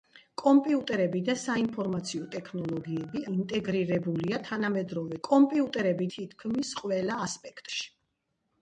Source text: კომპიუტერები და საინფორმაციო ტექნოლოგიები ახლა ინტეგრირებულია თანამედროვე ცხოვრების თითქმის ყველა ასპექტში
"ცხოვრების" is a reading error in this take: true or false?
true